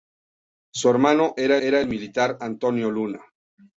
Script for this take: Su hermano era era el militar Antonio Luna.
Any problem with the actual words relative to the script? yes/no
no